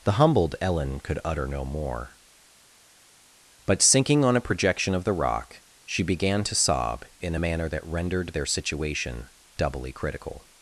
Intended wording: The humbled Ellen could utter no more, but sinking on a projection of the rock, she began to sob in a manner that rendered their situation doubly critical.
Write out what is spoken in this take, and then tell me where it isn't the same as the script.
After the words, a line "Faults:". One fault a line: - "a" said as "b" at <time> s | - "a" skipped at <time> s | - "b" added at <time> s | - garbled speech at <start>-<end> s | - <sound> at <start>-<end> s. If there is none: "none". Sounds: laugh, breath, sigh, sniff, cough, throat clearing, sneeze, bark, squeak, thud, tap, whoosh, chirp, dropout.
The humbled Ellen could utter no more, but sinking on a projection of the rock, she began to sob in a manner that rendered their situation doubly critical.
Faults:
none